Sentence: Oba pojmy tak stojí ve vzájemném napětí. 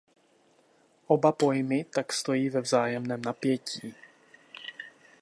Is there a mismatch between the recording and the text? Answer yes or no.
no